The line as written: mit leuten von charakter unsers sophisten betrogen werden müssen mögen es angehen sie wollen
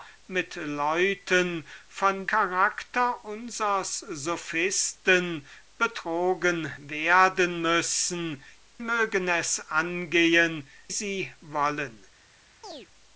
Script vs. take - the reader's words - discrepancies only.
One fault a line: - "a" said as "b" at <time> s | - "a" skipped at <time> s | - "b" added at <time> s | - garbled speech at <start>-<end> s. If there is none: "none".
none